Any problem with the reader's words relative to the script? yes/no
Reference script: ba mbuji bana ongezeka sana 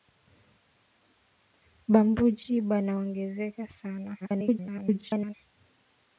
yes